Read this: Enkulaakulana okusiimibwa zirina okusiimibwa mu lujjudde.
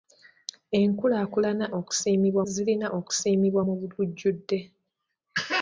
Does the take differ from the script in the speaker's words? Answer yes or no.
no